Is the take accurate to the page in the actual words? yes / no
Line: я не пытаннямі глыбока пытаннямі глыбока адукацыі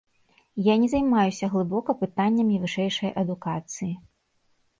no